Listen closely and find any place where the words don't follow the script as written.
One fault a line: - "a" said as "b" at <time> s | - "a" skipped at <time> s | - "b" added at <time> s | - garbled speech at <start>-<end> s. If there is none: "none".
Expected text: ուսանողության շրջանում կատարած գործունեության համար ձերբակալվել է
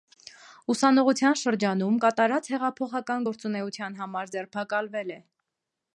- "հեղափոխական" added at 2.5 s